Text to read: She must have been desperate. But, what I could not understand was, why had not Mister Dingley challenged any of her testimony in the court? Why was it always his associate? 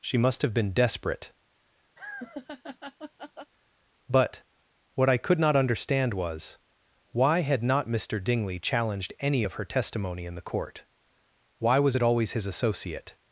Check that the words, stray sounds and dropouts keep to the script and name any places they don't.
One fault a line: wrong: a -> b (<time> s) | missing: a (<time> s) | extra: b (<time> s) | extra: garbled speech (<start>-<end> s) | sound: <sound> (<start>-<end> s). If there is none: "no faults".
sound: laugh (2.0-3.5 s)